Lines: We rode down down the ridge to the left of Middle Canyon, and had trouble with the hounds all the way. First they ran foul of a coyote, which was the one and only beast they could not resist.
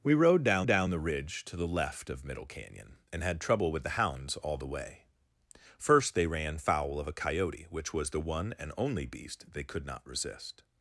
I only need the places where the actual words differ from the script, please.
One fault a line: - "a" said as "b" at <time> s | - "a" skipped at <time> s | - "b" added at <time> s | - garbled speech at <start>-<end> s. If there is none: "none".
none